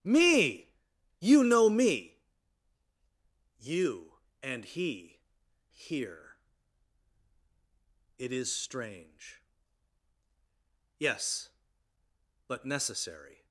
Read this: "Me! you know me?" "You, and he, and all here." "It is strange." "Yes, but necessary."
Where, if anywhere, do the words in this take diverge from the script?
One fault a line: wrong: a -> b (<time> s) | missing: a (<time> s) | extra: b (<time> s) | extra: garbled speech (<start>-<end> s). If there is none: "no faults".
missing: and all (5.2 s)